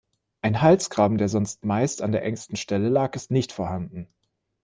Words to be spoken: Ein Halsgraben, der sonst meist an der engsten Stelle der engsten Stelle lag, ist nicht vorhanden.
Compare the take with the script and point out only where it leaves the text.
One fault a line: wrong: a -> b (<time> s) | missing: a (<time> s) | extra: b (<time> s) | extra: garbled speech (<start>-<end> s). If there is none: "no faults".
missing: der engsten Stelle (2.9 s)